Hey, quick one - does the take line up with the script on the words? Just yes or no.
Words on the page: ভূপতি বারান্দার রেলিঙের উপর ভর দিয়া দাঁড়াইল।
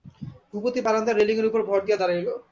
yes